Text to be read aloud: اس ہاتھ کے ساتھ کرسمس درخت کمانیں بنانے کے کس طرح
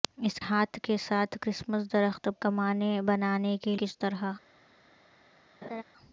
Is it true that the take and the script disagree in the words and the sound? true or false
true